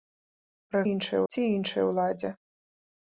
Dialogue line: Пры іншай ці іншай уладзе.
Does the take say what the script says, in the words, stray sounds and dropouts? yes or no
yes